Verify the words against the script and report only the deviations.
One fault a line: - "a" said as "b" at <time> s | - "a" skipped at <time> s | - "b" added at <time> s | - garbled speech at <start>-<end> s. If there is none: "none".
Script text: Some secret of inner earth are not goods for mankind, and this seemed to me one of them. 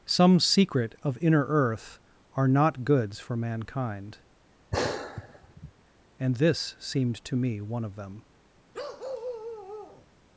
none